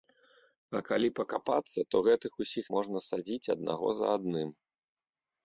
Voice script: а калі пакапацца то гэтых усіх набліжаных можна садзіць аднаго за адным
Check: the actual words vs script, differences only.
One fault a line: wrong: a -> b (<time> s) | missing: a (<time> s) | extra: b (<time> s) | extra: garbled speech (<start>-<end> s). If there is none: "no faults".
missing: набліжаных (2.6 s)